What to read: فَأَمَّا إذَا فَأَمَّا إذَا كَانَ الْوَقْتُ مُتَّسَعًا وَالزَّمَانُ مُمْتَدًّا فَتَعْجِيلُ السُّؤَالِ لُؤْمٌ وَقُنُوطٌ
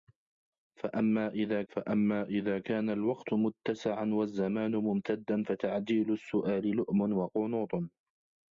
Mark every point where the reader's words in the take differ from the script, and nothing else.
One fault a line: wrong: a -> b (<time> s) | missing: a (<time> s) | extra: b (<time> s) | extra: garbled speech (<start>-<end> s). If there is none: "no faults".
no faults